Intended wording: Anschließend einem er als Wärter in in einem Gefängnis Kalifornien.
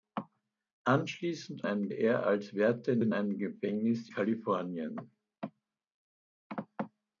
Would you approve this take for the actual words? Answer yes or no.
yes